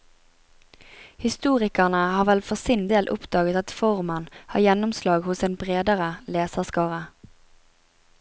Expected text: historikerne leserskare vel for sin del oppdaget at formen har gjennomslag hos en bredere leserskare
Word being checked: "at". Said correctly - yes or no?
yes